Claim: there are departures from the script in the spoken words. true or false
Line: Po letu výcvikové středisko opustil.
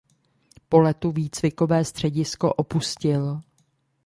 false